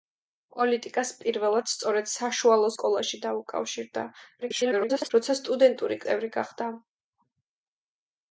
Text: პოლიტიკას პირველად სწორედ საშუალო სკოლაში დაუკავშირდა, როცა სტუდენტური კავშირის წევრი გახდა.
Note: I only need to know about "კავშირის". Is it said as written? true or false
false